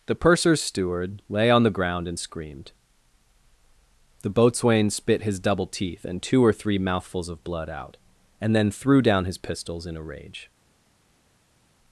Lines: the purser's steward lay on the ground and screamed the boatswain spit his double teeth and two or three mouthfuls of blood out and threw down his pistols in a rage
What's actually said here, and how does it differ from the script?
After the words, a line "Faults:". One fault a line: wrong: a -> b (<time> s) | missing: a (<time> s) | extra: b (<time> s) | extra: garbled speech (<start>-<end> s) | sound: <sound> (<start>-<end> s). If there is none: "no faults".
the purser's steward lay on the ground and screamed the boatswain spit his double teeth and two or three mouthfuls of blood out and then threw down his pistols in a rage
Faults:
extra: then (8.5 s)